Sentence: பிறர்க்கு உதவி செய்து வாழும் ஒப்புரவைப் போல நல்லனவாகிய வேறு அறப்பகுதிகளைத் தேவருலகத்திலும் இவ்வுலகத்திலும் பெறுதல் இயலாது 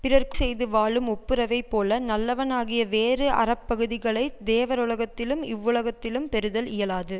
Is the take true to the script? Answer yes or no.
no